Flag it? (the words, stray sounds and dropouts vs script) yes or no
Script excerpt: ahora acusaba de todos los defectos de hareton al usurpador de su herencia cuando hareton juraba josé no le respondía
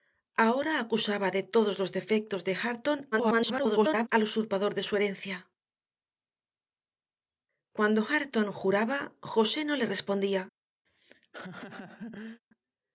yes